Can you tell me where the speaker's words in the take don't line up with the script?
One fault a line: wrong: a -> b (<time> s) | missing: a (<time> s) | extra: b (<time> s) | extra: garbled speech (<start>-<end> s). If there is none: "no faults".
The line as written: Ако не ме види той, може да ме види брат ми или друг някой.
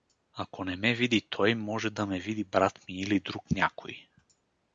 no faults